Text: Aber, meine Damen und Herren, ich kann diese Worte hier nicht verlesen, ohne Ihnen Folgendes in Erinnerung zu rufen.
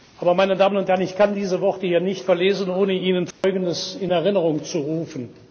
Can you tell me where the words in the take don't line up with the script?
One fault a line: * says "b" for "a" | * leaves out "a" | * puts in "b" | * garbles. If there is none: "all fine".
all fine